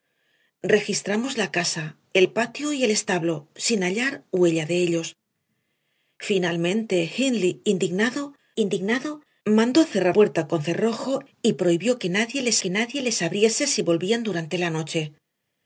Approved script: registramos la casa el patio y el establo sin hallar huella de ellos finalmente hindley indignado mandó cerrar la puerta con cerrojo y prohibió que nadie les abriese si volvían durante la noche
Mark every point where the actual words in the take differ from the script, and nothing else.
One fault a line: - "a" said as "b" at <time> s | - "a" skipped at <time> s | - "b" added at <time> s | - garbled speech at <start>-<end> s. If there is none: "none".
- "indignado" added at 8.6 s
- "la" skipped at 10.2 s
- "que nadie les" added at 12.6 s